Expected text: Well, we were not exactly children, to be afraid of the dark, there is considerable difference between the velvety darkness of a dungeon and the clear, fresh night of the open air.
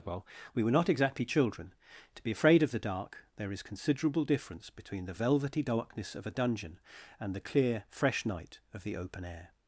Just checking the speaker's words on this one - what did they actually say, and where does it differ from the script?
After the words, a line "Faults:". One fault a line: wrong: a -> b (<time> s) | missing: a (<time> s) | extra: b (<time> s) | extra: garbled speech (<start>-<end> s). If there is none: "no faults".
Well, we were not exactly children, to be afraid of the dark, there is considerable difference between the velvety darkness of a dungeon and the clear, fresh night of the open air.
Faults:
no faults